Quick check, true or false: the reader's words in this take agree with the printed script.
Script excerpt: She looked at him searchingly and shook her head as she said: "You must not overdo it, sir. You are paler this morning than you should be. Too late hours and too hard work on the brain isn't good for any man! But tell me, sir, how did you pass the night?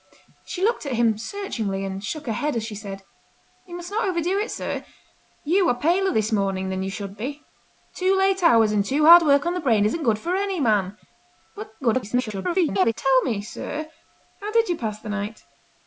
false